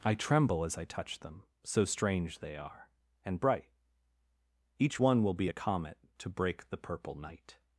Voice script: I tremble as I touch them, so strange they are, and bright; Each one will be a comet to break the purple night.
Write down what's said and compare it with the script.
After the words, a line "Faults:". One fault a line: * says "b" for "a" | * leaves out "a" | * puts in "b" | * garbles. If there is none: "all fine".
I tremble as I touch them, so strange they are, and bright; Each one will be a comet to break the purple night.
Faults:
all fine